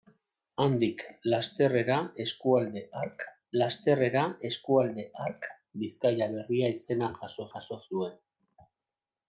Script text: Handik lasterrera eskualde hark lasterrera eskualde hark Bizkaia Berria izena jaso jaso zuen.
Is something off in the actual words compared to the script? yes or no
no